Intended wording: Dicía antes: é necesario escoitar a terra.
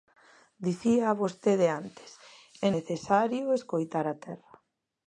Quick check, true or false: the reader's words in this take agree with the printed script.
false